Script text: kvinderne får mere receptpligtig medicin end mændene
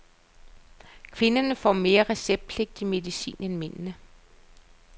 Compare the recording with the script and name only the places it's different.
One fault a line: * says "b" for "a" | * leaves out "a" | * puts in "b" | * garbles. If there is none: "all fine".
all fine